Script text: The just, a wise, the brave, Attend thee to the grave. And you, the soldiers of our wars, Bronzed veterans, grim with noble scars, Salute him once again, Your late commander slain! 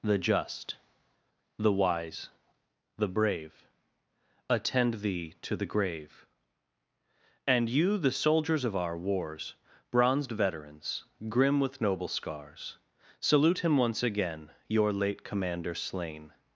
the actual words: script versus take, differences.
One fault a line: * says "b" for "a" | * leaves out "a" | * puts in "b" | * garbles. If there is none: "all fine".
* says "the" for "a"